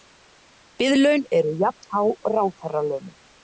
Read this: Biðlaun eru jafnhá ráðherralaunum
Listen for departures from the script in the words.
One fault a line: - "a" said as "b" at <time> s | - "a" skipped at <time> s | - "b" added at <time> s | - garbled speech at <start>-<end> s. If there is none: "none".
none